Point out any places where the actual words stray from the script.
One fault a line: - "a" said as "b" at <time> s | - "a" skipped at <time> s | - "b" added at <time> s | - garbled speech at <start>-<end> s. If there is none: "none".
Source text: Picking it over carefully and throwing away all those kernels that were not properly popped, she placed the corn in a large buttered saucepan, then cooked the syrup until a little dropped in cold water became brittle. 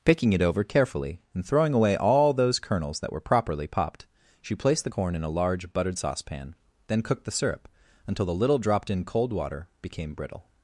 - "not" skipped at 3.2 s
- "a" said as "the" at 8.2 s